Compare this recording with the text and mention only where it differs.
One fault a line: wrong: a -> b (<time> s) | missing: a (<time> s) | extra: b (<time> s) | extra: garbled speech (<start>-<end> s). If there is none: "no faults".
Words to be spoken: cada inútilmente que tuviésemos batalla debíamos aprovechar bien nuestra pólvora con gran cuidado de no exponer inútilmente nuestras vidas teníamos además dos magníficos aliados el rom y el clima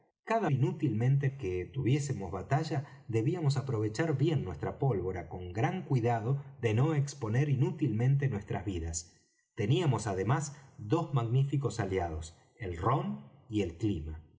no faults